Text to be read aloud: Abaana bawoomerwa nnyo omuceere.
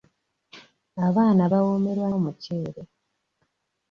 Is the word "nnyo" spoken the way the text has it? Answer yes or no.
no